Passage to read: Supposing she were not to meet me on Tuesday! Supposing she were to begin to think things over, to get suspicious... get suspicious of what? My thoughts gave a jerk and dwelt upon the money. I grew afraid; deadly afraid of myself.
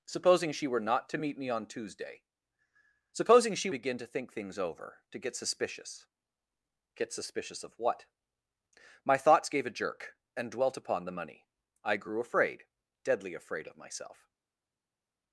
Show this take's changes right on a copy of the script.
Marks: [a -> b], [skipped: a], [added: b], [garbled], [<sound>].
Supposing she were not to meet me on Tuesday! Supposing she [skipped: were to] begin to think things over, to get suspicious... get suspicious of what? My thoughts gave a jerk and dwelt upon the money. I grew afraid; deadly afraid of myself.